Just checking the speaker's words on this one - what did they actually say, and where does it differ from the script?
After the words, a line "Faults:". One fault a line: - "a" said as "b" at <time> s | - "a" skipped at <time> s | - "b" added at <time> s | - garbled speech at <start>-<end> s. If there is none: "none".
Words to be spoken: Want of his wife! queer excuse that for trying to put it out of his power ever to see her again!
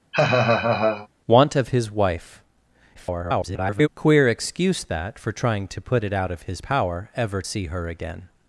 Want of his wife! [garbled] queer excuse that for trying to put it out of his power ever see her again!
Faults:
- garbled speech at 2.9-3.9 s
- "to" skipped at 7.4 s